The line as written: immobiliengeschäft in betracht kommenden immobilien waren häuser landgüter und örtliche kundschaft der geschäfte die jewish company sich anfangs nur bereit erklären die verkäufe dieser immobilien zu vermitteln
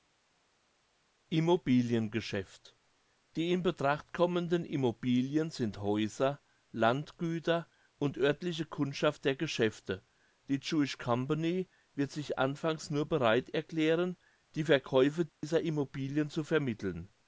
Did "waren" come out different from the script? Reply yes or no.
yes